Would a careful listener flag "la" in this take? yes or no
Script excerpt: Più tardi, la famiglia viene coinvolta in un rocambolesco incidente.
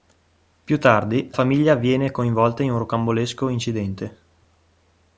yes